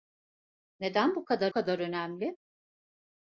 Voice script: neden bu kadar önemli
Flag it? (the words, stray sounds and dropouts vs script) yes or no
yes